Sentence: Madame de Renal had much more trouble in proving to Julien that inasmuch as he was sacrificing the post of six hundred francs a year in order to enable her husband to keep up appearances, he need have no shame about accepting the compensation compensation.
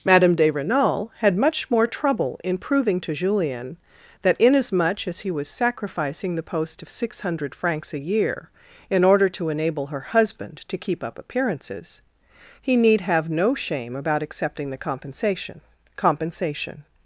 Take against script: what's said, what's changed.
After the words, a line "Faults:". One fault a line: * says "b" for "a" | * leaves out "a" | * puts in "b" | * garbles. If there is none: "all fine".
Madame de Renal had much more trouble in proving to Julien that inasmuch as he was sacrificing the post of six hundred francs a year in order to enable her husband to keep up appearances, he need have no shame about accepting the compensation compensation.
Faults:
all fine